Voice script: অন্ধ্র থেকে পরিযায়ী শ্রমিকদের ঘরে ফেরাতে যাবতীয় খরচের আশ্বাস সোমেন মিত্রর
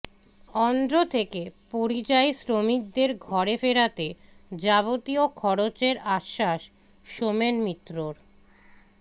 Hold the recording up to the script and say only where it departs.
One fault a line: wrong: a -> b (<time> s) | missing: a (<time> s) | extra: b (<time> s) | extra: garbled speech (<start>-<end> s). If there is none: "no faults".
no faults